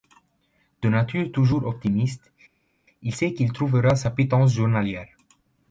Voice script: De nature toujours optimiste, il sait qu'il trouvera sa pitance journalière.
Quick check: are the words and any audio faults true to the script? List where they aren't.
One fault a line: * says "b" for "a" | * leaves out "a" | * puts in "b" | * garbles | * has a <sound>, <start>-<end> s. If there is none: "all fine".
all fine